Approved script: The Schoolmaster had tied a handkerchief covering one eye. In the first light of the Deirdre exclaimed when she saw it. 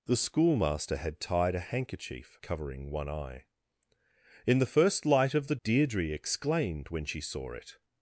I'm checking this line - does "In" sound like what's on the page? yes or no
yes